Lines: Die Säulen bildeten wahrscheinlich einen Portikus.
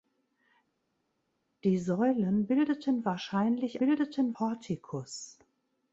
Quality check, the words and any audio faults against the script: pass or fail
fail